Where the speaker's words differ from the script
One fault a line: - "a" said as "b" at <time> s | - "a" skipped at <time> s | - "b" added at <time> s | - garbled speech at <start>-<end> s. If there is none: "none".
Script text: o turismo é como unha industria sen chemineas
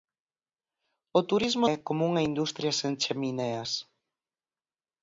none